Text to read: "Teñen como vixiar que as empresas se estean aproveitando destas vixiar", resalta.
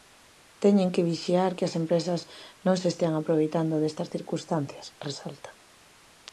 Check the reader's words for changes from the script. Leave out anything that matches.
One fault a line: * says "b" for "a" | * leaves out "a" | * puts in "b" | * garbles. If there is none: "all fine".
* says "que" for "como"
* puts in "non"
* says "circunstancias" for "vixiar"